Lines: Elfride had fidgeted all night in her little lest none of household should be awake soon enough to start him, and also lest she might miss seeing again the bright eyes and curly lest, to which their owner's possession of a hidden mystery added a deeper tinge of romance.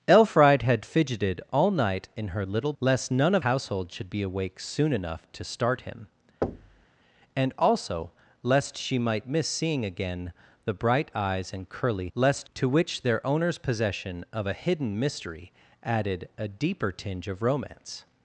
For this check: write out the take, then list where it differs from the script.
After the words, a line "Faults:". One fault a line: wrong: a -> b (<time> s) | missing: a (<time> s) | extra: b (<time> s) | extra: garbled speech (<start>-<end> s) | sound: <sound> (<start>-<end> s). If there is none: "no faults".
Elfride had fidgeted all night in her little lest none of household should be awake soon enough to start him, and also lest she might miss seeing again the bright eyes and curly lest, to which their owner's possession of a hidden mystery added a deeper tinge of romance.
Faults:
sound: thud (6.4-6.9 s)